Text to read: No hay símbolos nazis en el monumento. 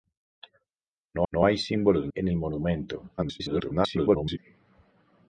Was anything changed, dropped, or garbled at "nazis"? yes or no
yes